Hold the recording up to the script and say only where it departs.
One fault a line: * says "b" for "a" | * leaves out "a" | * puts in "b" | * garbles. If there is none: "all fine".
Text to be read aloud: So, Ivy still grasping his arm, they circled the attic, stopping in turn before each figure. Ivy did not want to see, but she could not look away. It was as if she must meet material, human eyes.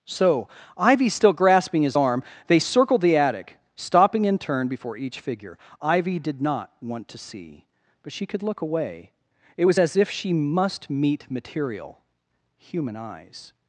* leaves out "not"